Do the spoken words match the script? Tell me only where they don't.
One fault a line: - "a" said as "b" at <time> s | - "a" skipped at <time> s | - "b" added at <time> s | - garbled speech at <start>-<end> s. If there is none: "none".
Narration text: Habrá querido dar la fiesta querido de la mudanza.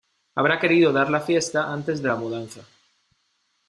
- "querido" said as "antes" at 1.7 s